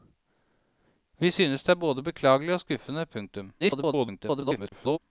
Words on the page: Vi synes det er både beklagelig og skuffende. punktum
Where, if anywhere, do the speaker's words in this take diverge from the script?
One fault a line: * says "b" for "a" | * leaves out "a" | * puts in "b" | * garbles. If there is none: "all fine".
* garbles